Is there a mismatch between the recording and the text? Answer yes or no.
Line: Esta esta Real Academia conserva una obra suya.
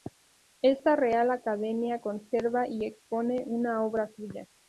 yes